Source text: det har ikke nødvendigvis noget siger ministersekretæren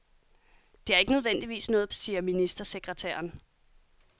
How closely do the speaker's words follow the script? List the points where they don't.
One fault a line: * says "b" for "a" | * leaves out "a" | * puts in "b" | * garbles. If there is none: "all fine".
all fine